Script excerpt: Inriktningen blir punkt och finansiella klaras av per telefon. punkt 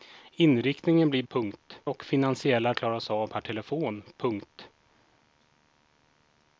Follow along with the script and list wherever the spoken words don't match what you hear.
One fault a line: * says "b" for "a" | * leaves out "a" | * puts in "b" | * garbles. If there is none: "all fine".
all fine